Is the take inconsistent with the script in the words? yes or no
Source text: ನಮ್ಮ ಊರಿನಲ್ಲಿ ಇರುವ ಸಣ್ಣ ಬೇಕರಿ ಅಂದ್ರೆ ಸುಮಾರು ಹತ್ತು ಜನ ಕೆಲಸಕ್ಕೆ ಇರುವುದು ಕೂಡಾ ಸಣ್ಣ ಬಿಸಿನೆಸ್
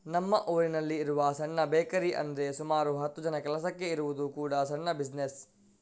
no